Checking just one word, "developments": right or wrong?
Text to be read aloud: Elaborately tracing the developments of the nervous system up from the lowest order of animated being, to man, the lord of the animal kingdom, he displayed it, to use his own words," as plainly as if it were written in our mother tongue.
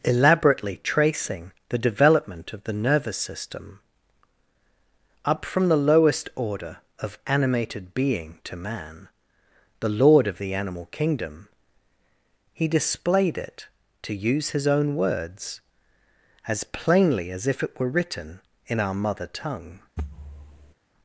wrong